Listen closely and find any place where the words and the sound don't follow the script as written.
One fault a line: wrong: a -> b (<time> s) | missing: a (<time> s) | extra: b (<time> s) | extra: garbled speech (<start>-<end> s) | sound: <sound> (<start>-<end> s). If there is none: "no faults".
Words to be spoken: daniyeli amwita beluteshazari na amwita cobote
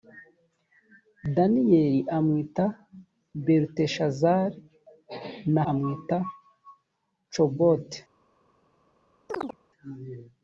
sound: chirp (9.3-9.6 s)